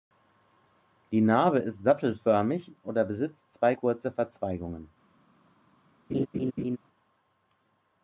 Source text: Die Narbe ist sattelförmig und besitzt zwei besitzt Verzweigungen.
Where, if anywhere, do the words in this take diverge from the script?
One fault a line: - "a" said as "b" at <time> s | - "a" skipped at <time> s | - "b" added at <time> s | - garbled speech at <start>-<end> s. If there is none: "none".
- "und" said as "oder" at 2.8 s
- "besitzt" said as "kurze" at 3.7 s